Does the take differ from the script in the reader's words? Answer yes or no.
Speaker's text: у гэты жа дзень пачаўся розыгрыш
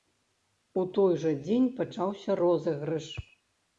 yes